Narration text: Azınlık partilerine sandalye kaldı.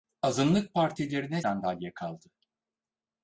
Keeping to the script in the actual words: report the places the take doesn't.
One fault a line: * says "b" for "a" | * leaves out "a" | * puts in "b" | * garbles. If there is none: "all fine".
all fine